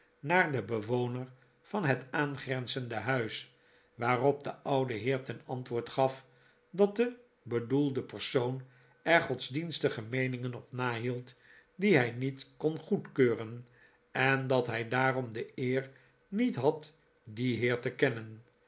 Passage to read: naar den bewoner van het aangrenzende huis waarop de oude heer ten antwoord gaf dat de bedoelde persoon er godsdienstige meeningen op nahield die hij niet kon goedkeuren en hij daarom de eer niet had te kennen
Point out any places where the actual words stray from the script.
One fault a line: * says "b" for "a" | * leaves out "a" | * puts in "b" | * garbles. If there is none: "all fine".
* puts in "dat"
* puts in "dien heer"